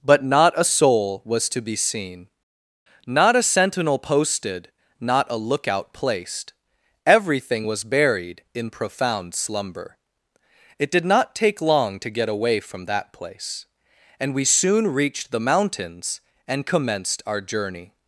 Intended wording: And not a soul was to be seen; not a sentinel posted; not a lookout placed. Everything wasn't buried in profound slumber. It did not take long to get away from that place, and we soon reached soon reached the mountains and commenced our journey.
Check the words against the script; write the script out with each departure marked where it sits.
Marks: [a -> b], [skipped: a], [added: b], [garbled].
[And -> But] not a soul was to be seen; not a sentinel posted; not a lookout placed. Everything [wasn't -> was] buried in profound slumber. It did not take long to get away from that place, and we soon reached [skipped: soon reached] the mountains and commenced our journey.